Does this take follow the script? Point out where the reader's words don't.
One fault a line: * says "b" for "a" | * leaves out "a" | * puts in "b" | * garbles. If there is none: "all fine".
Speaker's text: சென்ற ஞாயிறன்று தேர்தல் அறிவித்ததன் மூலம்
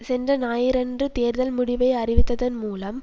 * puts in "முடிவை"